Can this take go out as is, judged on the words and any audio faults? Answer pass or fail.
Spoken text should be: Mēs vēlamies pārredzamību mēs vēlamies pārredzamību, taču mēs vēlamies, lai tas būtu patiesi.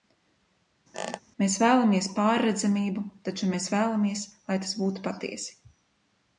fail